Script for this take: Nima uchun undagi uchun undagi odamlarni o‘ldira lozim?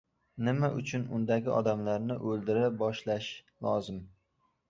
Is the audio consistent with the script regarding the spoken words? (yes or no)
no